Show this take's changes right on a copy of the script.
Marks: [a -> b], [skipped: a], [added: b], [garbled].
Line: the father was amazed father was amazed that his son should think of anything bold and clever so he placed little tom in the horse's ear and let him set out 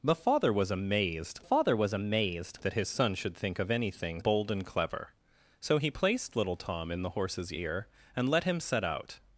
the father was amazed father was amazed that his son should think of anything bold and clever so he placed little tom in the horse's ear and let him set out